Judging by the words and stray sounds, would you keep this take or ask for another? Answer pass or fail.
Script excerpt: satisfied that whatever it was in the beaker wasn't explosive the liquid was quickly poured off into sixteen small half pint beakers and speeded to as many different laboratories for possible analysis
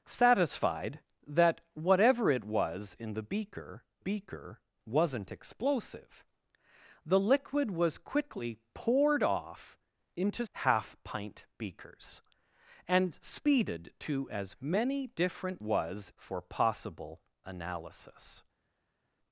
fail